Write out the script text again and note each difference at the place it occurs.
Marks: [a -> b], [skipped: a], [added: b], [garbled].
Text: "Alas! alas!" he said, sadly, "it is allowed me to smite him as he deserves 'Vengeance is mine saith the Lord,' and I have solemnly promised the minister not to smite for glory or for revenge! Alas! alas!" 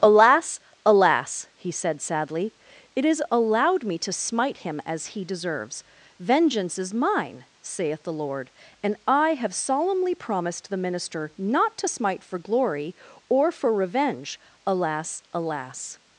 "Alas! alas!" he said, sadly, "it is allowed me to smite him as he deserves 'Vengeance is mine saith the Lord,' and I have solemnly promised the minister not to smite for glory or for revenge! Alas! alas!"